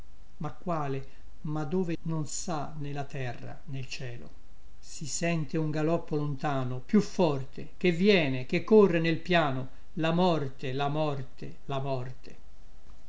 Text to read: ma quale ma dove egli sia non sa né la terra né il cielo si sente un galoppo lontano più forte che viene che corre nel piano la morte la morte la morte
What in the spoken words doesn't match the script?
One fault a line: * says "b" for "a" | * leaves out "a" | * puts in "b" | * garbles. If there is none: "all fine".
* leaves out "egli sia"